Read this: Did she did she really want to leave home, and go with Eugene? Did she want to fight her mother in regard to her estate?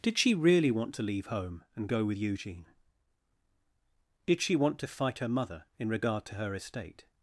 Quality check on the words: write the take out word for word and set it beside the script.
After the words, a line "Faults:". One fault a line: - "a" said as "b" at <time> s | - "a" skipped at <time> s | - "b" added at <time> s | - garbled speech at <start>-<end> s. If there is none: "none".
Did she really want to leave home, and go with Eugene? Did she want to fight her mother in regard to her estate?
Faults:
- "did she" skipped at 0.3 s